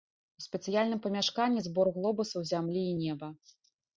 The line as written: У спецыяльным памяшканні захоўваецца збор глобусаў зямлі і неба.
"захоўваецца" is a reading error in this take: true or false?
true